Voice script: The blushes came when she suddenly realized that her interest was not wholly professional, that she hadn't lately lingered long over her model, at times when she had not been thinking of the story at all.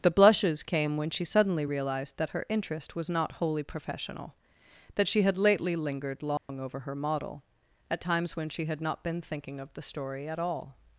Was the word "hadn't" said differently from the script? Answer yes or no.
yes